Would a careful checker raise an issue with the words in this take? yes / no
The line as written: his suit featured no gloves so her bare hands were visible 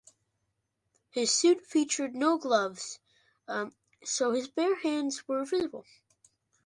yes